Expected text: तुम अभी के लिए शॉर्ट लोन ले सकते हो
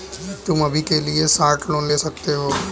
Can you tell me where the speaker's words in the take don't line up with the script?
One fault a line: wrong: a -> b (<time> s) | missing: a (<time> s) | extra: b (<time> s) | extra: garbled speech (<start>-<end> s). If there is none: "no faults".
no faults